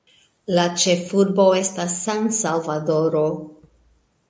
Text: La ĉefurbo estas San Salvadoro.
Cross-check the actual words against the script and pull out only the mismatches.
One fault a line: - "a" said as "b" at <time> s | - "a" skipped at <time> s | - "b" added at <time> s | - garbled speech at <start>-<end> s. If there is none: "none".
none